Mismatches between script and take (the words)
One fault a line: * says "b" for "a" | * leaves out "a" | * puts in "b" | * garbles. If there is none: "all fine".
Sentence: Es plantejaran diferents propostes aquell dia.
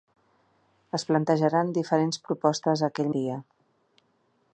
all fine